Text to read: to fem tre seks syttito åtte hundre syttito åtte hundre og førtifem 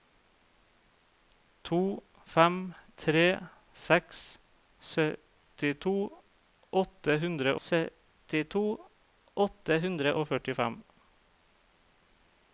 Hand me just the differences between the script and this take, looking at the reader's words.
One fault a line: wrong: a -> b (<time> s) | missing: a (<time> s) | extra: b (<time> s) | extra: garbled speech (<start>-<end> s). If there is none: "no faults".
no faults